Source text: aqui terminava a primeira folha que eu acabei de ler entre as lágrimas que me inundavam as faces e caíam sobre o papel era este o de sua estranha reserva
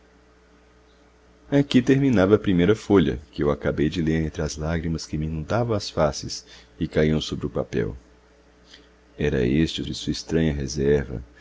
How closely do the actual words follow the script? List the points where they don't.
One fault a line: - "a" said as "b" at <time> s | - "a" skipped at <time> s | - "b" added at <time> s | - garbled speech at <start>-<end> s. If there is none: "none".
none